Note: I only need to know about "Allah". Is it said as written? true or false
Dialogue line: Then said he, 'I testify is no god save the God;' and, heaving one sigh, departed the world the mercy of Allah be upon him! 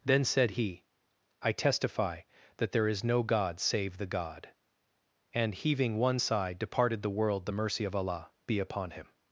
true